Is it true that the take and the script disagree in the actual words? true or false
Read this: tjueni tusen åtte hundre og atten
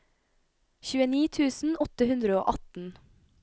false